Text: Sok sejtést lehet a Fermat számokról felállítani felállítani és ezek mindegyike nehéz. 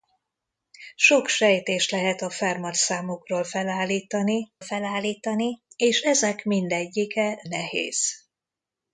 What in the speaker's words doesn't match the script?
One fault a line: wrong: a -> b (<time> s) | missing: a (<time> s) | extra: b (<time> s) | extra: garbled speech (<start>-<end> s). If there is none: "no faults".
no faults